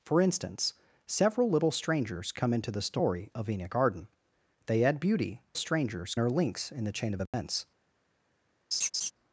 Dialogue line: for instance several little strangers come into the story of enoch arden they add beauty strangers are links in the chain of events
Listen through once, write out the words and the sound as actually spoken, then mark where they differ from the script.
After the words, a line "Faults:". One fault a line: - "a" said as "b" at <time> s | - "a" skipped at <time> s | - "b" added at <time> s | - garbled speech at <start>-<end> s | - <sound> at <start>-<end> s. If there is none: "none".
for instance several little strangers come into the story of enoch arden they add beauty strangers are links in the chain of events
Faults:
- dropout at 7.3-7.3 s
- laugh at 8.7-9.1 s